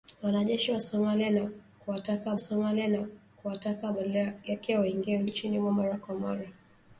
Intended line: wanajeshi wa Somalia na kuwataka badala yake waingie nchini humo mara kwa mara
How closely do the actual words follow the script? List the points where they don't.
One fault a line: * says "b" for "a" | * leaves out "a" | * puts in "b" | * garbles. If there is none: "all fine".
* puts in "Somalia na kuwataka"